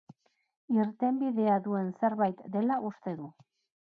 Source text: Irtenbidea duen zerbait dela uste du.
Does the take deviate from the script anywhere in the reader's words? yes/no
no